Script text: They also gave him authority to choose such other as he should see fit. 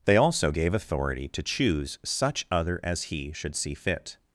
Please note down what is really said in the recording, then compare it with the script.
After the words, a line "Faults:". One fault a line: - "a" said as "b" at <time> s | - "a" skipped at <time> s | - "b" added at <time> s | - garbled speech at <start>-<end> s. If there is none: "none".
They also gave authority to choose such other as he should see fit.
Faults:
- "him" skipped at 0.7 s